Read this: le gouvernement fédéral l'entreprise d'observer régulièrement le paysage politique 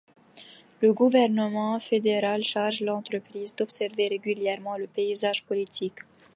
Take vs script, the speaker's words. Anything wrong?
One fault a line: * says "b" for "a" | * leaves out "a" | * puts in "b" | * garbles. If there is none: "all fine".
* puts in "charge"